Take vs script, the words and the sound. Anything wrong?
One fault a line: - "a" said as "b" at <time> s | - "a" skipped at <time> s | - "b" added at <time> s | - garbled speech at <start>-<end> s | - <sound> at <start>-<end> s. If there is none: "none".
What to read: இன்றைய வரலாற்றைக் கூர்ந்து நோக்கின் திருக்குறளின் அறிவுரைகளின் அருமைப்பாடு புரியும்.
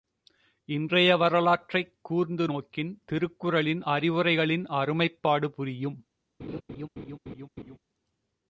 - laugh at 6.4-7.8 s